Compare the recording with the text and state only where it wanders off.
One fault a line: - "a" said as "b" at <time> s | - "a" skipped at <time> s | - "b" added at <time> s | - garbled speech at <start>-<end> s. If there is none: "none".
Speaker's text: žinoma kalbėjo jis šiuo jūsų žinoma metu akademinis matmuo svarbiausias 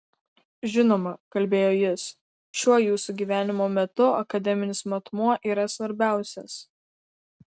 - "žinoma" said as "gyvenimo" at 3.2 s
- "yra" added at 5.5 s